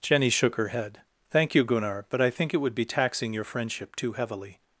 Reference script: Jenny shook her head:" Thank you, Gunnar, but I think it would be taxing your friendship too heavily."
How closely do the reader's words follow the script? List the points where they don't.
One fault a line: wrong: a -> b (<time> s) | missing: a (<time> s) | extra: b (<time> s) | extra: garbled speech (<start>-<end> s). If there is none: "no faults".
no faults